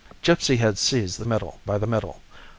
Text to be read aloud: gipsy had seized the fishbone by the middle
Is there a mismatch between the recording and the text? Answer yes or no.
yes